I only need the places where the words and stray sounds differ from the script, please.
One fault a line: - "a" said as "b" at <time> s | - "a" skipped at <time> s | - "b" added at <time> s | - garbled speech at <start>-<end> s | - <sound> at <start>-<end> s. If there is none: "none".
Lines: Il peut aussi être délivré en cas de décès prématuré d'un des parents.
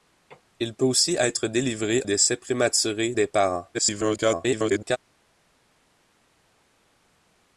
- "en cas de" skipped at 2.0 s
- "d'un" skipped at 3.1 s
- garbled speech at 3.7-5.0 s